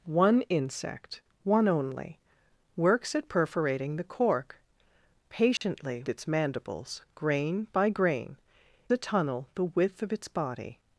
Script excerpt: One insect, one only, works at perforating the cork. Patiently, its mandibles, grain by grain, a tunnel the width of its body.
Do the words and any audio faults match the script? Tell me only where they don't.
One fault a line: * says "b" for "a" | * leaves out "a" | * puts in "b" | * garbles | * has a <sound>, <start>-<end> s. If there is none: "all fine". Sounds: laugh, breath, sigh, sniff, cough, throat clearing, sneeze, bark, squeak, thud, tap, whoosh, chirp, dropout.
* has a dropout, 5.6-5.6 s